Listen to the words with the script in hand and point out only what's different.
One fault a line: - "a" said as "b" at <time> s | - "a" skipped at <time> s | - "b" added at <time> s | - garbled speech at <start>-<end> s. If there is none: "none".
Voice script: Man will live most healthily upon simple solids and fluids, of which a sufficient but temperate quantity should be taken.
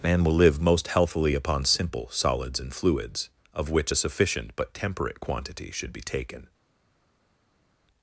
none